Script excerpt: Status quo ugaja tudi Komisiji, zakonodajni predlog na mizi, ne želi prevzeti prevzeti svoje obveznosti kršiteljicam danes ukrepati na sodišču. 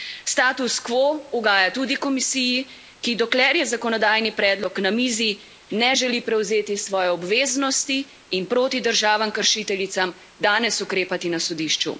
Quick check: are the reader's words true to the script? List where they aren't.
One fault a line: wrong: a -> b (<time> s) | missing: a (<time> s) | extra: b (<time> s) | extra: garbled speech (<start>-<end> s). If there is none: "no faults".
extra: ki dokler je (3.0 s)
missing: prevzeti (6.8 s)
extra: in proti državam (8.3 s)